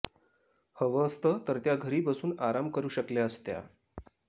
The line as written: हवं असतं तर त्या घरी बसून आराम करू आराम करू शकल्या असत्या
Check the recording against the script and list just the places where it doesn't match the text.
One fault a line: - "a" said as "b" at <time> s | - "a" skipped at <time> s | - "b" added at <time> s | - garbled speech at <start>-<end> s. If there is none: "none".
- "आराम करू" skipped at 2.9 s